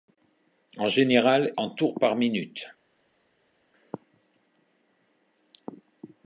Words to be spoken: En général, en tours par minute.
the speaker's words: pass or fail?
pass